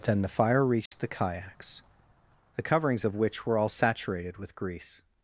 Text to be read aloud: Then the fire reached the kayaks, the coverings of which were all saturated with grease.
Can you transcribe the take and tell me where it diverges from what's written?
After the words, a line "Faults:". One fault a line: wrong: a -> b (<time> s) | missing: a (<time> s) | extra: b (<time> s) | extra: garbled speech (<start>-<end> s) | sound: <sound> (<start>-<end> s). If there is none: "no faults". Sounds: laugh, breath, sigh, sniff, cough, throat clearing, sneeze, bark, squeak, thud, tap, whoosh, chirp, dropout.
Then the fire reached the kayaks, the coverings of which were all saturated with grease.
Faults:
sound: dropout (0.9-0.9 s)